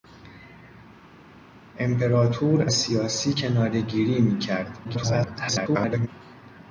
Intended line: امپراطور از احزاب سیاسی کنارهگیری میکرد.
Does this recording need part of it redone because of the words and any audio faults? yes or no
yes